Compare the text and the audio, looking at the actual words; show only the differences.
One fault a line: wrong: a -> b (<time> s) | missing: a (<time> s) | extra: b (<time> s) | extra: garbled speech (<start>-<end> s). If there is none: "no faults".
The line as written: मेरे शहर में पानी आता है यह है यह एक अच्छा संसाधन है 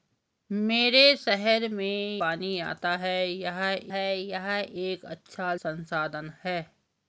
no faults